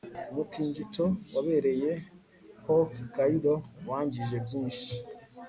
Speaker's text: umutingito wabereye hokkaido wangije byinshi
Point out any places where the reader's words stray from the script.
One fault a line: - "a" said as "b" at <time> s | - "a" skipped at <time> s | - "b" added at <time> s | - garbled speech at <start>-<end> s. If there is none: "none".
none